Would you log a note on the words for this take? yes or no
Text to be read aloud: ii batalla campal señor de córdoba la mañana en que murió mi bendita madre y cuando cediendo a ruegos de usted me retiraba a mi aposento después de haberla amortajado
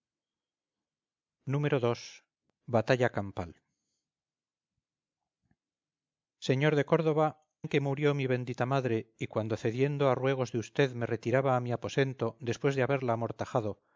yes